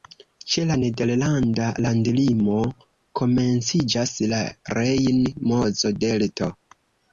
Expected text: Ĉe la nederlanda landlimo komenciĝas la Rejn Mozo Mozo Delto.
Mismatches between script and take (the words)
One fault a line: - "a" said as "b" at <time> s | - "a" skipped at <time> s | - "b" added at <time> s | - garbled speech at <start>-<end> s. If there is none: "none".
- "Mozo" skipped at 6.0 s